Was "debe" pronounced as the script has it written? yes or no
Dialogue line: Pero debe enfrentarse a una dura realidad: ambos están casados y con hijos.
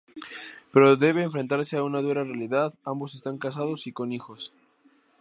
yes